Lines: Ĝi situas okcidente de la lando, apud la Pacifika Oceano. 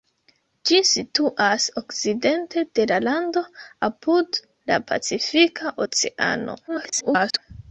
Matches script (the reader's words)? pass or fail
fail